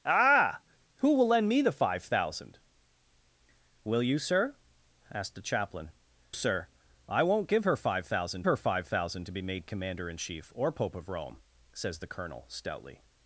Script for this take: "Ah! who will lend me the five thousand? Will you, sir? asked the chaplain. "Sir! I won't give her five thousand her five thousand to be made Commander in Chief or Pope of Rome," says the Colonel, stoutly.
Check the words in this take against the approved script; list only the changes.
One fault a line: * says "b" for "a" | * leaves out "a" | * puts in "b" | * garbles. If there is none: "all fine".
all fine